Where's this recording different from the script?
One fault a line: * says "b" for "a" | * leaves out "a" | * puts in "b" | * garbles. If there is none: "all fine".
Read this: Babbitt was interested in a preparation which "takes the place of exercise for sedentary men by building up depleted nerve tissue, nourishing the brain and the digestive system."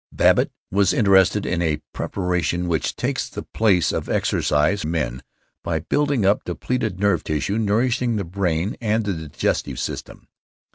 * leaves out "for sedentary"